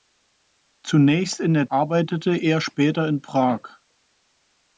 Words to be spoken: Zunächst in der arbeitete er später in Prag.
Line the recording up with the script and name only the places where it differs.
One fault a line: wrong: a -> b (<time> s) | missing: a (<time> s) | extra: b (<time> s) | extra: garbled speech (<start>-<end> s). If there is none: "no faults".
no faults